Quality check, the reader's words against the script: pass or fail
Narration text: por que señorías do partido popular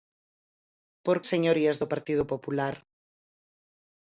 fail